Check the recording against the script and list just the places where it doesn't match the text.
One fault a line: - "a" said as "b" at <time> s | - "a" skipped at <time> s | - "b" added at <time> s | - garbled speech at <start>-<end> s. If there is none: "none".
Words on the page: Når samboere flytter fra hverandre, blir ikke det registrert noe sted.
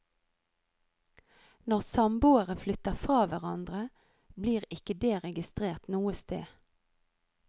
none